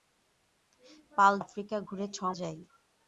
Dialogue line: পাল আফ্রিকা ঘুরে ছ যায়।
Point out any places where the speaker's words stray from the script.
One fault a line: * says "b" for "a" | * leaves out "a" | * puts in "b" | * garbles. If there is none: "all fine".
all fine